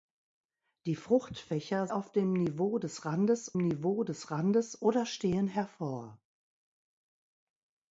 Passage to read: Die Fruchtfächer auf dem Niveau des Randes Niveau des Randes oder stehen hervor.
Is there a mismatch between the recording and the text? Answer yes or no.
no